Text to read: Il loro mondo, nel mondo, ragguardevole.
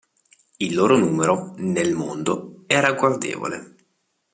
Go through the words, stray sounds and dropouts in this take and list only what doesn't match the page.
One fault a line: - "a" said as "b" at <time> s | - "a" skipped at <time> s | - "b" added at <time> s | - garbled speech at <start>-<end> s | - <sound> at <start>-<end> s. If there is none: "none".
- "mondo" said as "numero" at 1.0 s
- "è" added at 2.7 s